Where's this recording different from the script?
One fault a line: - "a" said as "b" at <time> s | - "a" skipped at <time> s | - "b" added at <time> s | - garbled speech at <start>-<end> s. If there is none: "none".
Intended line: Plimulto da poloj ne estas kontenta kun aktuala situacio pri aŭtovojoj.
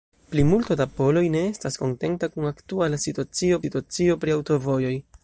- "situacio" added at 3.6 s